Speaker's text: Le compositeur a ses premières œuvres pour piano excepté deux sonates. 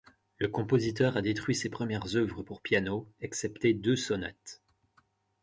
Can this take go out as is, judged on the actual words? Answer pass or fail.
fail